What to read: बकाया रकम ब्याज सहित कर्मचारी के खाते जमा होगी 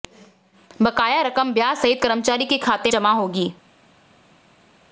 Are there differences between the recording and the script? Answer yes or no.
no